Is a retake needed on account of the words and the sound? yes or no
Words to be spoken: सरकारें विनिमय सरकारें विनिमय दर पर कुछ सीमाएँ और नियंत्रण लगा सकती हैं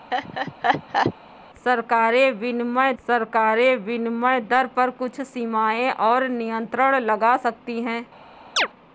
yes